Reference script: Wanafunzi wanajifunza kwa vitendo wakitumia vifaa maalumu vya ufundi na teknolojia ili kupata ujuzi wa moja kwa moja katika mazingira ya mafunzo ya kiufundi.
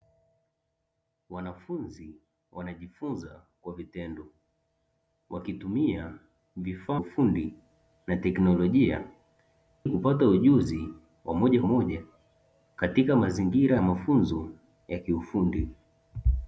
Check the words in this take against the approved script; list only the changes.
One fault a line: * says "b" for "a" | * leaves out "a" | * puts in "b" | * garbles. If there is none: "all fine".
* leaves out "maalumu vya"
* leaves out "ili"
* leaves out "kwa"